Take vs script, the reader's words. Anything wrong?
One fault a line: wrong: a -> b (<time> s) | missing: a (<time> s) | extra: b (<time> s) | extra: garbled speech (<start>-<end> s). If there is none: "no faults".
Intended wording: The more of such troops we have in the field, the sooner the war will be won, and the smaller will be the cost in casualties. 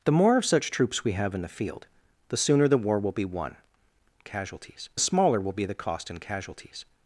wrong: and -> casualties (4.2 s)